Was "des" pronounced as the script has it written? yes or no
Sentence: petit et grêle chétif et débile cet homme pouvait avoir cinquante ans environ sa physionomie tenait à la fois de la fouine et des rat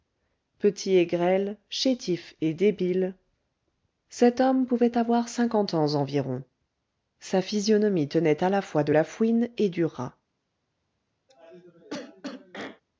no